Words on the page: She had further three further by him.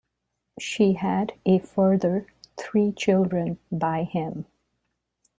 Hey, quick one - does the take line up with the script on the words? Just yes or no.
no